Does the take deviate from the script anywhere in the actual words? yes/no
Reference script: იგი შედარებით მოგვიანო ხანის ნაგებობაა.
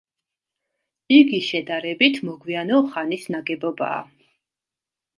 no